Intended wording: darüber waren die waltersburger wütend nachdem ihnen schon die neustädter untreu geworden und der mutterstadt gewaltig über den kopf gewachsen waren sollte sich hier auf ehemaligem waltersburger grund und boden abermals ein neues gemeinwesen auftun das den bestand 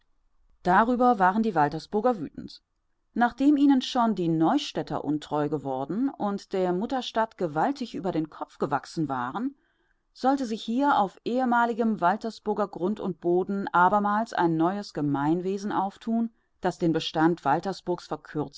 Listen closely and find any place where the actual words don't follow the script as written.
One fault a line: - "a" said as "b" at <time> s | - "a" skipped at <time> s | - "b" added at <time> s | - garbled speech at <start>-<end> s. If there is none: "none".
none